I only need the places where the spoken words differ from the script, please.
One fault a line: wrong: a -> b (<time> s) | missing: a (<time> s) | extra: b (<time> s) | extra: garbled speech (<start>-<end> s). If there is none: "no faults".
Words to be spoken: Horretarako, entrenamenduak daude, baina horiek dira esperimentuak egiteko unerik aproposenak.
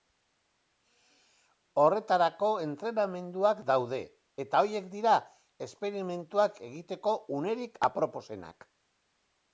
wrong: baina -> eta (4.4 s)